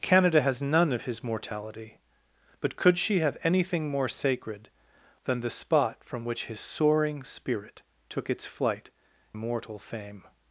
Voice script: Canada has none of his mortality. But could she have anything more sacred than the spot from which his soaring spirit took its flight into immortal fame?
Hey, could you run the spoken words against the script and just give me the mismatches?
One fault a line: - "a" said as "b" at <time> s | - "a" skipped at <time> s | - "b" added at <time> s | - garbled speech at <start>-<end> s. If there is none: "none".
- "into" skipped at 8.9 s